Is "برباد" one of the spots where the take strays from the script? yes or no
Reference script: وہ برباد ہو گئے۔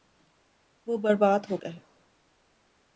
no